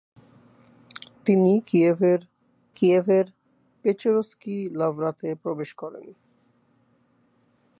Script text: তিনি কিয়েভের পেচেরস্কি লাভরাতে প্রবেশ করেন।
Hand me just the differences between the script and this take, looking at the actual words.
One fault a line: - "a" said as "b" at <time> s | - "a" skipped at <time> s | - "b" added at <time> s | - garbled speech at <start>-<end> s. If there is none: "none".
- "কিয়েভের" added at 2.8 s